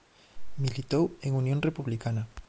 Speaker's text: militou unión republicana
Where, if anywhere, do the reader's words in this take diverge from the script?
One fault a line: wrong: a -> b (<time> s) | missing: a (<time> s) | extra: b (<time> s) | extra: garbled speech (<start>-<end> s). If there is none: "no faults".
extra: en (1.2 s)